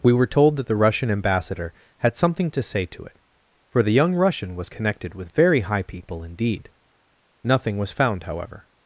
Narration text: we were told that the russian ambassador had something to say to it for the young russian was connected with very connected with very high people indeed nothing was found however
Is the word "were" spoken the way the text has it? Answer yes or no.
yes